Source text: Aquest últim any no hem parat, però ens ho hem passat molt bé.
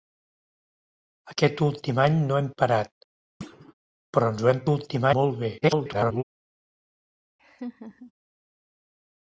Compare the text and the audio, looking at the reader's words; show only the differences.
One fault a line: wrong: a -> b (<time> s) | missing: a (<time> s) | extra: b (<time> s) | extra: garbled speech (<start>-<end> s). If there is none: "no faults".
wrong: passat -> últim (4.7 s)
extra: garbled speech (5.6-6.2 s)